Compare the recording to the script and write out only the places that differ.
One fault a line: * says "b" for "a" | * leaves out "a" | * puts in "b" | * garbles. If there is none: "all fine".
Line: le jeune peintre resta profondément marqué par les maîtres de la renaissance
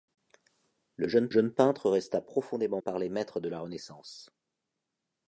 * puts in "jeune"
* leaves out "marqué"